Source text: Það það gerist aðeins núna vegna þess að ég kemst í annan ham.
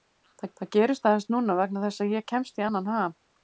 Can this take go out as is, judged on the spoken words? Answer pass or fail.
pass